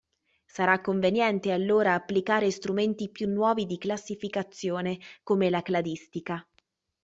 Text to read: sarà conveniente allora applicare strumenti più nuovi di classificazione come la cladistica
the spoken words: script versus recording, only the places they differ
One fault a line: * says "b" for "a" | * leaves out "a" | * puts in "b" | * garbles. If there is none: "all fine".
all fine